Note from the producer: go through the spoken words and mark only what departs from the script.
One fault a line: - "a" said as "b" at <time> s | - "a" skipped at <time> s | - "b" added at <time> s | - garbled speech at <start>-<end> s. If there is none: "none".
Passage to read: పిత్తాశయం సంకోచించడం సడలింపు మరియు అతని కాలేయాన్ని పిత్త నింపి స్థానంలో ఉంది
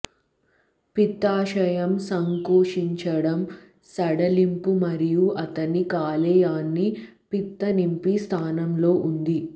none